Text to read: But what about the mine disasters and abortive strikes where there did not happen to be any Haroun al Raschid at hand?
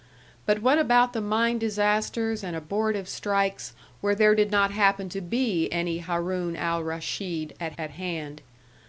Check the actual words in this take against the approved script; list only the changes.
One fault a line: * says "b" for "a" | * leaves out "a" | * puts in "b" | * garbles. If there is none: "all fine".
* puts in "at"